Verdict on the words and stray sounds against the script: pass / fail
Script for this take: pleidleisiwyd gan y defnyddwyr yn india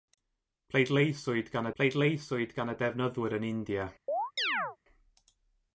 fail